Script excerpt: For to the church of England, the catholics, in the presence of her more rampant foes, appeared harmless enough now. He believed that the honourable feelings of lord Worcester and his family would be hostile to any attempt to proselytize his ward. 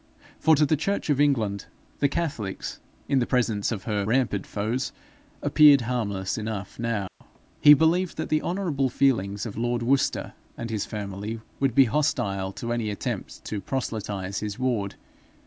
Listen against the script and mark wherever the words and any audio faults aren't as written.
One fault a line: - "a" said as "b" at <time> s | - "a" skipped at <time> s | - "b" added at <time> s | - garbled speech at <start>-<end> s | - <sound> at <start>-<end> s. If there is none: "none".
- "more" skipped at 4.1 s
- dropout at 7.1-7.2 s